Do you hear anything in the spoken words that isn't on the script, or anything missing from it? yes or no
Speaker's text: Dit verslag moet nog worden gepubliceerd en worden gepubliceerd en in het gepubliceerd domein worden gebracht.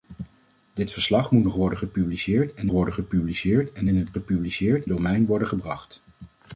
no